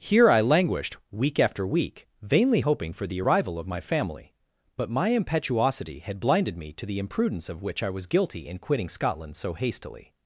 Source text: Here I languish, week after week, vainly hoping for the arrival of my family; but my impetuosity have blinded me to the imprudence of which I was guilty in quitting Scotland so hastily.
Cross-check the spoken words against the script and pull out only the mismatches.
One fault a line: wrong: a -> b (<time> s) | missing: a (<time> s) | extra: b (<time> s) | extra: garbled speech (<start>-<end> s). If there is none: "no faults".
wrong: languish -> languished (0.4 s)
wrong: have -> had (6.0 s)